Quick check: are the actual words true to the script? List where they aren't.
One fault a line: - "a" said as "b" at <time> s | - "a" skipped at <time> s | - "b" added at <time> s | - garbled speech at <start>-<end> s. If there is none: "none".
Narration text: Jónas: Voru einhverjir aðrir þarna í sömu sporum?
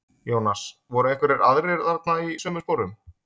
none